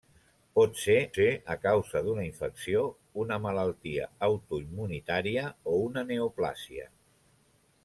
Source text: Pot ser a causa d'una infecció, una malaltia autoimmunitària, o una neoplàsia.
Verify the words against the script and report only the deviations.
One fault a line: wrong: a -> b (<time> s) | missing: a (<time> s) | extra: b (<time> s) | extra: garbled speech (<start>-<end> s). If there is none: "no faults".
extra: ser (1.1 s)